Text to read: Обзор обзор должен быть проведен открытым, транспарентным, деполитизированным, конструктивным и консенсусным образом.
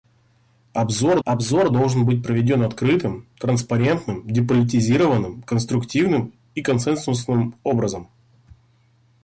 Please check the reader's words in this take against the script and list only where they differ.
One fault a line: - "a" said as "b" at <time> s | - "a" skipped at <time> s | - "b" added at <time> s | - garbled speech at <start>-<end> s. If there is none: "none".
none